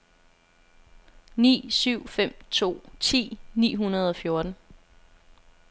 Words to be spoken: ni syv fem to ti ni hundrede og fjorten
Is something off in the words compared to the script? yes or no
no